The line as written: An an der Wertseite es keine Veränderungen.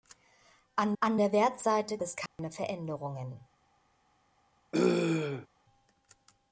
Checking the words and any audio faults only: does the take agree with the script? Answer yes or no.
no